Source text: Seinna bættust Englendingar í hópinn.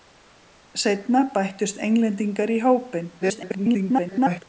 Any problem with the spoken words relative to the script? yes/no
yes